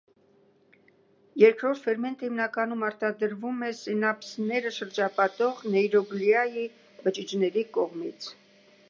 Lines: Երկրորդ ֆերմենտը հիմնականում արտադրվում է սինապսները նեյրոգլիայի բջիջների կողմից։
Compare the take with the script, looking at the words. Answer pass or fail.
fail